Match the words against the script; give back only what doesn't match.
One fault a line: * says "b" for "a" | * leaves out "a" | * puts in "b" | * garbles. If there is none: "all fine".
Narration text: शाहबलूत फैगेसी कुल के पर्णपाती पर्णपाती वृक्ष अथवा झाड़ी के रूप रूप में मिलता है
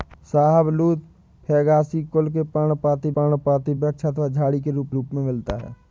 all fine